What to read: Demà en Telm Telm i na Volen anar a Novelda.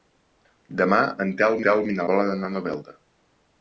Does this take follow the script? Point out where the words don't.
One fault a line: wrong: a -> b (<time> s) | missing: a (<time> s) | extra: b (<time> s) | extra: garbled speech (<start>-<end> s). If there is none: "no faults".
no faults